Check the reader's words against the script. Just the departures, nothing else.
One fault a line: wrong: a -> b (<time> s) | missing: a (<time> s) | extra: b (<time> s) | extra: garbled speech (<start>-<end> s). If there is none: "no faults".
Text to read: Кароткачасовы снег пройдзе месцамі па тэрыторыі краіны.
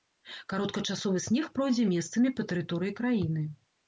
no faults